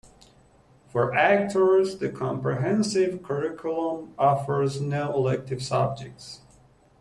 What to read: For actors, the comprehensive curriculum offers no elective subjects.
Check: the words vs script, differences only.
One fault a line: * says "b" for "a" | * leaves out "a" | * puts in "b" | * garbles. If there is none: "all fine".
all fine